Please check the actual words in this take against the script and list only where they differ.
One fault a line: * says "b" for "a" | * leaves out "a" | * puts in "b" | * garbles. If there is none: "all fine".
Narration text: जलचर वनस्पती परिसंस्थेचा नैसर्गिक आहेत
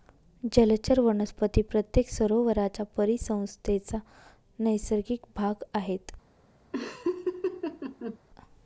* puts in "प्रत्येक सरोवराच्या"
* puts in "भाग"